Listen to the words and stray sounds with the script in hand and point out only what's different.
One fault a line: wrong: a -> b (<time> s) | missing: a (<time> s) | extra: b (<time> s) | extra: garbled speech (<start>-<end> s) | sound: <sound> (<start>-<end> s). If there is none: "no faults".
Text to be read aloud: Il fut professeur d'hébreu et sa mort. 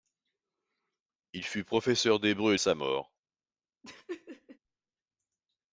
sound: laugh (3.8-4.6 s)